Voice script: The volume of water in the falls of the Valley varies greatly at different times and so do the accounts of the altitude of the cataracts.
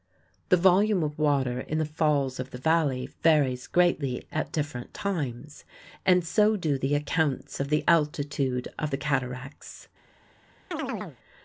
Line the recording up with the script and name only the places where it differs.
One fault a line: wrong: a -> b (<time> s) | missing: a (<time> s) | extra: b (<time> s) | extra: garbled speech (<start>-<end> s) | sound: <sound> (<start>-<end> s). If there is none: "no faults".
sound: chirp (10.7-11.2 s)